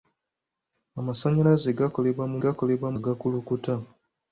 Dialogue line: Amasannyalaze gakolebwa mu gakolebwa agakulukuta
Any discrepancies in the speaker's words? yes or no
no